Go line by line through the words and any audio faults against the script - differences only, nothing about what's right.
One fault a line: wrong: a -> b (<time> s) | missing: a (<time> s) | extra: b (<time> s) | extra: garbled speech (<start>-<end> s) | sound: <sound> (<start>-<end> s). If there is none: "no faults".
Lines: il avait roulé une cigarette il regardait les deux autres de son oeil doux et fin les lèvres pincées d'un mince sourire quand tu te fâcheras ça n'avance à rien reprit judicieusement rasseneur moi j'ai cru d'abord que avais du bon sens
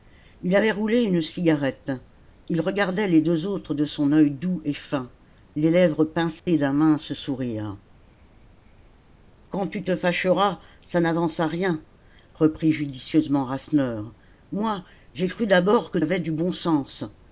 sound: dropout (6.4-6.5 s)